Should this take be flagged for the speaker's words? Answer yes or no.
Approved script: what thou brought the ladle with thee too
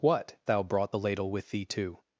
no